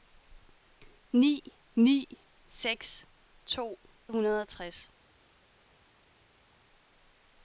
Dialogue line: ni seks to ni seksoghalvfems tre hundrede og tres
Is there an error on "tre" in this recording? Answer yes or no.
yes